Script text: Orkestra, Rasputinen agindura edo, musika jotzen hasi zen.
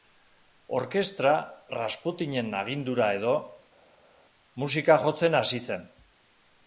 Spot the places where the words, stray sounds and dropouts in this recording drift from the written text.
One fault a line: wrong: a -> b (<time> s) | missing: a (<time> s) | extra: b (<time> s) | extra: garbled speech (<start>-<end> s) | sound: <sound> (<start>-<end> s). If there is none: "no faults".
no faults